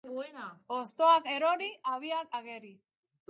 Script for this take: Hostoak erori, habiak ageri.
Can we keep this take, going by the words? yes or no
yes